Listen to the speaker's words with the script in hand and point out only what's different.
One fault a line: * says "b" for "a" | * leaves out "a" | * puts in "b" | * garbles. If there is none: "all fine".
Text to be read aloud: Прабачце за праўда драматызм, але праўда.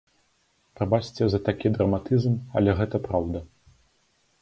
* says "такі" for "праўда"
* puts in "гэта"